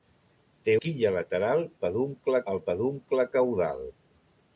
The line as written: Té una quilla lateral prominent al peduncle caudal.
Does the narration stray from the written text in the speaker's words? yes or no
yes